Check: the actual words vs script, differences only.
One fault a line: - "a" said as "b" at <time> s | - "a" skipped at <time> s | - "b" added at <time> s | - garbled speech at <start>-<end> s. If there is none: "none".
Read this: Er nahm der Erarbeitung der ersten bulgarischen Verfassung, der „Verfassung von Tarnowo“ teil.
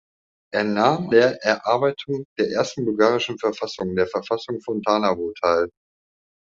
none